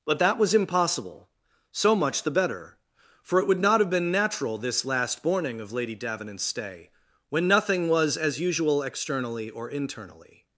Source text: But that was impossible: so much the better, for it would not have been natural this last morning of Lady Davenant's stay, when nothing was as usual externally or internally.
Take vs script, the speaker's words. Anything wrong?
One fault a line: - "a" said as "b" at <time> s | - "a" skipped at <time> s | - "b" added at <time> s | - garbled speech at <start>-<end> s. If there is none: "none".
none